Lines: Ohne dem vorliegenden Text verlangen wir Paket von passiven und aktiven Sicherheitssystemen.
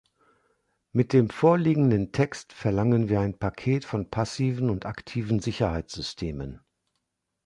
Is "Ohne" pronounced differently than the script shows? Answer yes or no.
yes